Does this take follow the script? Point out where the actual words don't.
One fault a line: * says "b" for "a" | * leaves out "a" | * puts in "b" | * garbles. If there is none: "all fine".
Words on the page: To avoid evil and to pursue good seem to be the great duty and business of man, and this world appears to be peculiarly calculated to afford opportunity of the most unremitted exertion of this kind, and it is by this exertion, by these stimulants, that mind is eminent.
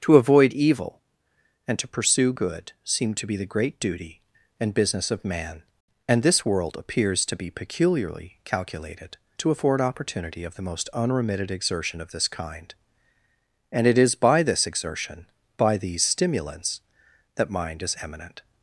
all fine